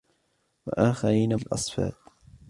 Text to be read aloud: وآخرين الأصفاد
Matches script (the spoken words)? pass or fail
pass